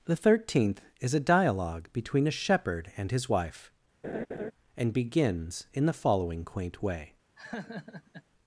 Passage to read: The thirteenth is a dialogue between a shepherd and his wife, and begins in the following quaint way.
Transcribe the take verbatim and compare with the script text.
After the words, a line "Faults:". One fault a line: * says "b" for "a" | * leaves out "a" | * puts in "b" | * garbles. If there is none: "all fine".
The thirteenth is a dialogue between a shepherd and his wife, and begins in the following quaint way.
Faults:
all fine